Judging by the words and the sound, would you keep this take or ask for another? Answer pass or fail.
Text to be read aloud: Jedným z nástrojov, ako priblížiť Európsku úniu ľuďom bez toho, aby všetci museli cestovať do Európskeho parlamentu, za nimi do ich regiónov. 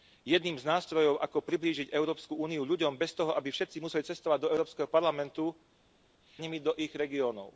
pass